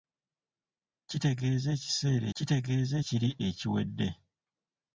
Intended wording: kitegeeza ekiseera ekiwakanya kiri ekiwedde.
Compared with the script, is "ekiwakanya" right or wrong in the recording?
wrong